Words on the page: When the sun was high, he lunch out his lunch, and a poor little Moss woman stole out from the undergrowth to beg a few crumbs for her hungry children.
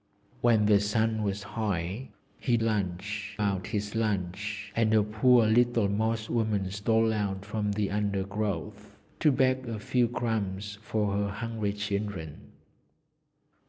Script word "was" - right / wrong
right